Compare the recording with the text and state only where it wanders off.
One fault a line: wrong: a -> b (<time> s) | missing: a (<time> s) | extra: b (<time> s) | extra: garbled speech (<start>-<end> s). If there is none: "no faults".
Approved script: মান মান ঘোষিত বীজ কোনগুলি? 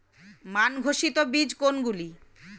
missing: মান (0.7 s)